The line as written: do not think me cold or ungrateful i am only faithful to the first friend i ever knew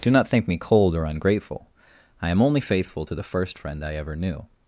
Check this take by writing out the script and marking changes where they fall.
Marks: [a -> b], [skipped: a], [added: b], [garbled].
do not think me cold or ungrateful i am only faithful to the first friend i ever knew